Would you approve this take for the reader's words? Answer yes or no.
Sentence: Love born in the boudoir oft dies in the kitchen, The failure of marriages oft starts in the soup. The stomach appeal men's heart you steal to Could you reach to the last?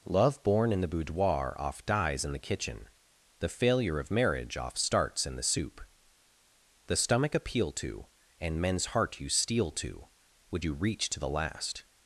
no